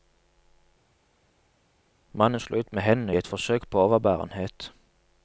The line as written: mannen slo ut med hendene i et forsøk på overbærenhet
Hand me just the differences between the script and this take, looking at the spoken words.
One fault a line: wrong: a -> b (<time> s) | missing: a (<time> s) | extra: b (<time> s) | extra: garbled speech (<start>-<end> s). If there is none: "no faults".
no faults